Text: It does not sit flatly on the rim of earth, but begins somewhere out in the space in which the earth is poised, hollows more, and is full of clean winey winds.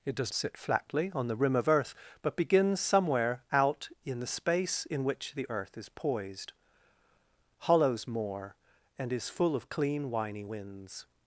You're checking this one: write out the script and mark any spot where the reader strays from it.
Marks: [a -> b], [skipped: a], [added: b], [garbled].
It does [skipped: not] sit flatly on the rim of earth, but begins somewhere out in the space in which the earth is poised, hollows more, and is full of clean winey winds.